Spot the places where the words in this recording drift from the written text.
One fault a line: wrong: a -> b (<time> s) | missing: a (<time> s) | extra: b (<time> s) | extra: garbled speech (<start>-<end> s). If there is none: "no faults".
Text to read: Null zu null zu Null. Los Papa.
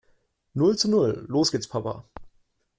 wrong: zu Null Los -> Los gehts (1.3 s)